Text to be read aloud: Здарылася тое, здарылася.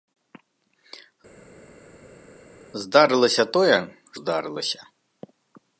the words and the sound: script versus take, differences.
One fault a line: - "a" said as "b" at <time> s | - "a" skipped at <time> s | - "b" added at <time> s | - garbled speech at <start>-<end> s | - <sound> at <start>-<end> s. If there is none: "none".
none